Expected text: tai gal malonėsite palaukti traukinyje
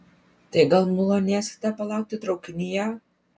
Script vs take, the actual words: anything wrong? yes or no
no